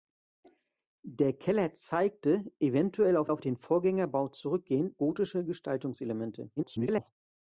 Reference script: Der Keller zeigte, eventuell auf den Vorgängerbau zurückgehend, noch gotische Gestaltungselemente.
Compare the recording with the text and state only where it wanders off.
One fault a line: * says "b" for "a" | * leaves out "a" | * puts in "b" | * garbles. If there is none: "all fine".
* puts in "auf"
* leaves out "noch"
* garbles